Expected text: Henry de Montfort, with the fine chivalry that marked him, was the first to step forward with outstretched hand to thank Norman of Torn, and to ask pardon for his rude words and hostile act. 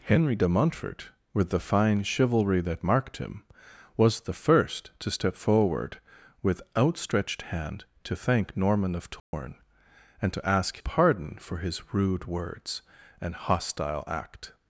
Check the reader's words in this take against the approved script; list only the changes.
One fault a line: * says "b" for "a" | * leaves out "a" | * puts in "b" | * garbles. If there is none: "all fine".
all fine